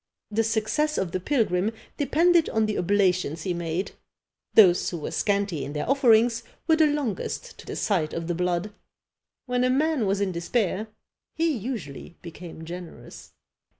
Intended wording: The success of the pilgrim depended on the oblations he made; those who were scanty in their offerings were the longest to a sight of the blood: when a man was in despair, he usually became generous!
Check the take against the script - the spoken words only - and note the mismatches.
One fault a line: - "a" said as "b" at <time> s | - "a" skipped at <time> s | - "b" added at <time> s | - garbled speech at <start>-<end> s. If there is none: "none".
none